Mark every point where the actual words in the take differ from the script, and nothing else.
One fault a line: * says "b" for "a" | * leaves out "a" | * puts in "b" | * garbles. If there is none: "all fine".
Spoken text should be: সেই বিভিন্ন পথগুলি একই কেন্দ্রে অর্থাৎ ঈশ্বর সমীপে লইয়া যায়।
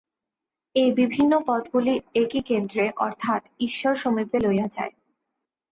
* says "এই" for "সেই"